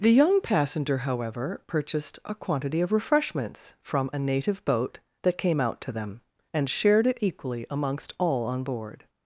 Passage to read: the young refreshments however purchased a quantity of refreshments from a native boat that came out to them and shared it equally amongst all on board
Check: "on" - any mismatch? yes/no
no